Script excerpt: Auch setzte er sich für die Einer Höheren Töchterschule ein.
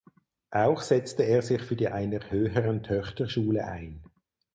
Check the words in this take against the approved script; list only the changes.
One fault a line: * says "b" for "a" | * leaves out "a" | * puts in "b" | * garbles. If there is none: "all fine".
all fine